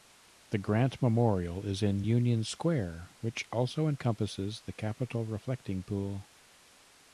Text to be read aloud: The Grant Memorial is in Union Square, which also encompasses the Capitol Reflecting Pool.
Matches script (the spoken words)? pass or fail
pass